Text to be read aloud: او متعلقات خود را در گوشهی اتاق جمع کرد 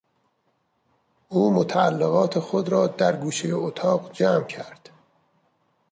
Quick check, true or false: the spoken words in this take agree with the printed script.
true